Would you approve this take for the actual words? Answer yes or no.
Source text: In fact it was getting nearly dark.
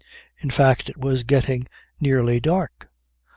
yes